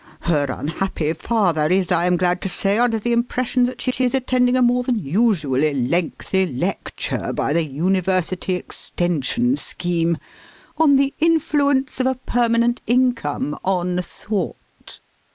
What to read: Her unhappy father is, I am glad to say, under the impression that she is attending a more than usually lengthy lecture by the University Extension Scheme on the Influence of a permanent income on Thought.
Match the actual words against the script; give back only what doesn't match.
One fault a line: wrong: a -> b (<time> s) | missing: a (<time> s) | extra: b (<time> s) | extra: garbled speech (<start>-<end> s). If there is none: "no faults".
extra: she (3.9 s)